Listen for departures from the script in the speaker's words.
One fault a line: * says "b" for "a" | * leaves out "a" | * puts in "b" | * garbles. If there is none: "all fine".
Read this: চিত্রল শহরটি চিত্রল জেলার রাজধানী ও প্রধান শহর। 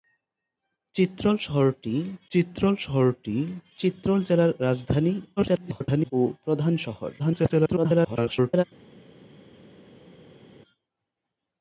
* puts in "শহরটি চিত্রল"
* garbles
* garbles